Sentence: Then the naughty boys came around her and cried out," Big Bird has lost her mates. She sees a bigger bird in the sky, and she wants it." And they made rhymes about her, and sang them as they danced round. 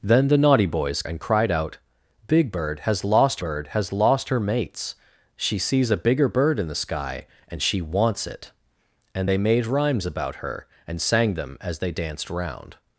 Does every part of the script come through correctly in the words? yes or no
no